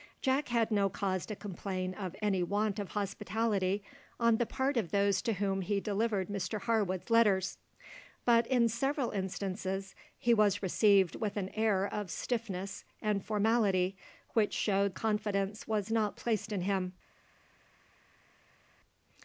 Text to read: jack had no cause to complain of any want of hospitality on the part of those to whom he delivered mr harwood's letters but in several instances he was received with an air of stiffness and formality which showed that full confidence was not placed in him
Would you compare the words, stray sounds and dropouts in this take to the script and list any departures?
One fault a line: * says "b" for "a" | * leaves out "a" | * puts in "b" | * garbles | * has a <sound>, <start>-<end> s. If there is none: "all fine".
* leaves out "that full"